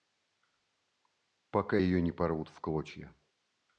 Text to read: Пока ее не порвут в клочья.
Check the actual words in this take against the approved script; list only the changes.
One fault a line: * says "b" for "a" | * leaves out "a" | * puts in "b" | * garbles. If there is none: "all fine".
all fine